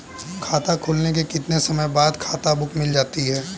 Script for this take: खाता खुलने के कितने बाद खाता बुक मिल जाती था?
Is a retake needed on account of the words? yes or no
yes